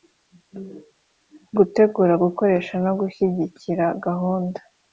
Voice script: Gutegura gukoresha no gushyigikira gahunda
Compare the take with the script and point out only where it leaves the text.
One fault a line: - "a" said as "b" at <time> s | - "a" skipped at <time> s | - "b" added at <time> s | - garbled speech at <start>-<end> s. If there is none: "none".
none